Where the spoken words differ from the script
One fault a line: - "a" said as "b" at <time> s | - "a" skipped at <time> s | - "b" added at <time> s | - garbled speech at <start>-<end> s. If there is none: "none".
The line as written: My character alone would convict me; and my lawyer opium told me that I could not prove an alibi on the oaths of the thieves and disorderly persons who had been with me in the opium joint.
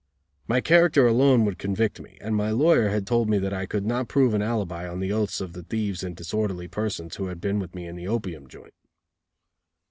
- "opium" said as "had" at 2.9 s